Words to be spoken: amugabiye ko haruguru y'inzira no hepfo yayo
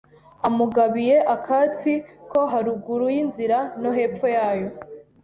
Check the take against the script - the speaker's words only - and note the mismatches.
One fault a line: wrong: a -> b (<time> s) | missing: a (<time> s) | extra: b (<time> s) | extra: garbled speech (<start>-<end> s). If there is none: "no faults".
extra: akatsi (1.4 s)